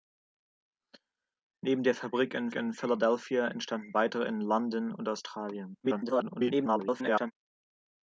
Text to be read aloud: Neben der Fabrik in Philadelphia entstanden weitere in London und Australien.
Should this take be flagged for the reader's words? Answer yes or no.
yes